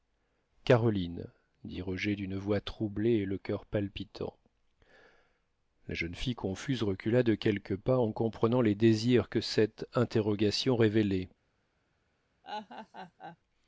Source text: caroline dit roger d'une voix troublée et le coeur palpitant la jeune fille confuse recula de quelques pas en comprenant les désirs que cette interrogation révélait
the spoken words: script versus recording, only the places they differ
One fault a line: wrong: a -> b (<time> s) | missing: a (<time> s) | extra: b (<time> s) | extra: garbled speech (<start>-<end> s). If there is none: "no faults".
no faults